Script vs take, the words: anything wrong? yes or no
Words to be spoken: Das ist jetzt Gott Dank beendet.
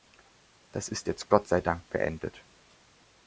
yes